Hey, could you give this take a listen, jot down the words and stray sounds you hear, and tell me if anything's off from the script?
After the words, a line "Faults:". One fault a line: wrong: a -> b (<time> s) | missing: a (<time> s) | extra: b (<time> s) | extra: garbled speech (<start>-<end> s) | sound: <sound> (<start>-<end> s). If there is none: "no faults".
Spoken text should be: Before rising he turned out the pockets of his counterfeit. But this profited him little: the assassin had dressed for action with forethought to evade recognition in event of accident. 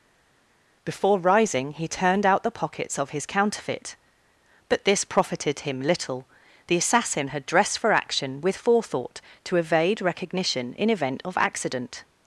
Before rising he turned out the pockets of his counterfeit. But this profited him little: the assassin had dressed for action with forethought to evade recognition in event of accident.
Faults:
no faults